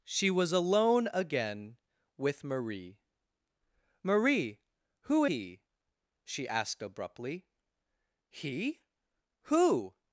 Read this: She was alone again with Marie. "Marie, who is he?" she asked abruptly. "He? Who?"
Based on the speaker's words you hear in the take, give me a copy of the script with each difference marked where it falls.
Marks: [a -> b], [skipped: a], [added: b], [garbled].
She was alone again with Marie. "Marie, who [skipped: is] he?" she asked abruptly. "He? Who?"